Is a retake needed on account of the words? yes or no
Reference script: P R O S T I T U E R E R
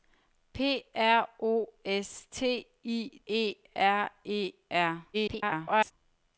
yes